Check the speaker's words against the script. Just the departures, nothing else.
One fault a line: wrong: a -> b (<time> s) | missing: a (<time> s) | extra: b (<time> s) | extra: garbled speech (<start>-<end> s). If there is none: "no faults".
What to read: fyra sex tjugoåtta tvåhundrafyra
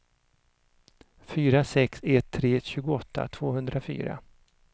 extra: ett tre (2.0 s)